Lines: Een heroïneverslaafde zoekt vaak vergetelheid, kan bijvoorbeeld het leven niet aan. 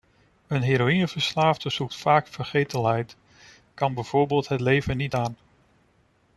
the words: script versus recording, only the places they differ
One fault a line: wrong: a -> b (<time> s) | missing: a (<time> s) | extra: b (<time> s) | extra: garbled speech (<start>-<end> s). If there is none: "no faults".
no faults